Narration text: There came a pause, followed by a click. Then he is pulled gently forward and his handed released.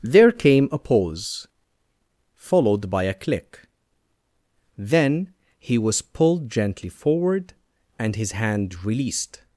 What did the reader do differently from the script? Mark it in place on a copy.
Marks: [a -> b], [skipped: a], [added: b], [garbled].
There came a pause, followed by a click. Then he [is -> was] pulled gently forward and his [handed -> hand] released.